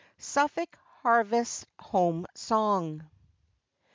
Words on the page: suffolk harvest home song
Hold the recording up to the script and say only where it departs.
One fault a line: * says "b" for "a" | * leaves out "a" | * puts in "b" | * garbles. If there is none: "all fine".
all fine